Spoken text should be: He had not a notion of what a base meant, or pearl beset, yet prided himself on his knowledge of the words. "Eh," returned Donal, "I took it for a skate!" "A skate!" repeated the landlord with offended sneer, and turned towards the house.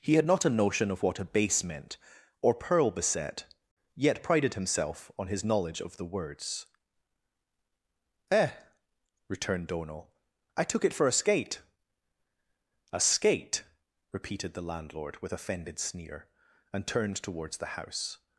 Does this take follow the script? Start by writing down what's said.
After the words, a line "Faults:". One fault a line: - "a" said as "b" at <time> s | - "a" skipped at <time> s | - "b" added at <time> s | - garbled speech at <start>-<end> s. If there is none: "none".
He had not a notion of what a base meant, or pearl beset, yet prided himself on his knowledge of the words. "Eh," returned Donal, "I took it for a skate!" "A skate!" repeated the landlord with offended sneer, and turned towards the house.
Faults:
none